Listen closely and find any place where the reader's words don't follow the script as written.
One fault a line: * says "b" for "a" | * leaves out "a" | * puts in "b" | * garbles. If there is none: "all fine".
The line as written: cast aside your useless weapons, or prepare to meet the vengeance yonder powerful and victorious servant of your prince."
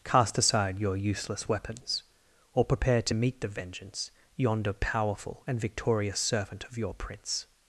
all fine